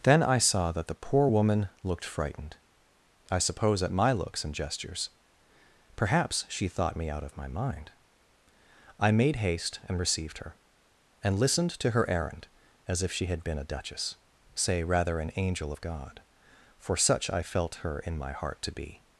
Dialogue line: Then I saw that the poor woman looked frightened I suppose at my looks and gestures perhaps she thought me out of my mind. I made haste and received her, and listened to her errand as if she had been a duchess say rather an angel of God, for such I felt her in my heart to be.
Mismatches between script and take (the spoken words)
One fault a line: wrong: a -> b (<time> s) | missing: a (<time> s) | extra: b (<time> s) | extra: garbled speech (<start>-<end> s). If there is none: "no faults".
no faults